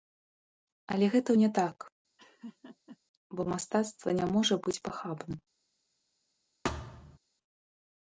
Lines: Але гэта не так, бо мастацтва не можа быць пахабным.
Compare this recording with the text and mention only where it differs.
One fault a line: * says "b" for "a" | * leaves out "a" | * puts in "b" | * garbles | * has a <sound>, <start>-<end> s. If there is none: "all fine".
* has a laugh, 2.2-3.0 s
* has a thud, 6.6-7.2 s